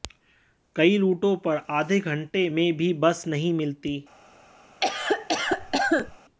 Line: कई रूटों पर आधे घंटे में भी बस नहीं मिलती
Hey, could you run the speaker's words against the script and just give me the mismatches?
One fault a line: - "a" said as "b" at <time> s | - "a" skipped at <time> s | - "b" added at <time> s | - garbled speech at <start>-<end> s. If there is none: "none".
none